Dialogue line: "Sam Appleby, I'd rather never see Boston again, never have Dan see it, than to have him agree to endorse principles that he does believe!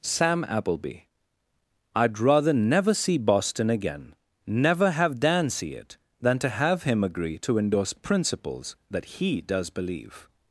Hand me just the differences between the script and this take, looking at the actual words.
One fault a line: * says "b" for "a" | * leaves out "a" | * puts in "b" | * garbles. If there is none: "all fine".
all fine